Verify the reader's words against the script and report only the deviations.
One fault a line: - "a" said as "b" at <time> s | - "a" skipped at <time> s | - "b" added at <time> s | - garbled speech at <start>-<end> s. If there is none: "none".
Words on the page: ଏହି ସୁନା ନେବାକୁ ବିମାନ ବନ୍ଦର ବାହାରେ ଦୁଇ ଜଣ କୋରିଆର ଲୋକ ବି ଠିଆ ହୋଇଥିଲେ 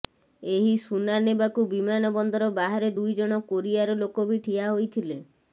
none